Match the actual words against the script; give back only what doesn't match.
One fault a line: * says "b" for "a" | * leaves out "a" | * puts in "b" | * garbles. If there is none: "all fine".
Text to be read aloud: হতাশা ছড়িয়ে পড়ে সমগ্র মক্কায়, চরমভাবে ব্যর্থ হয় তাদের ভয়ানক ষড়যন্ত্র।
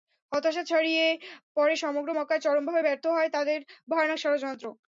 all fine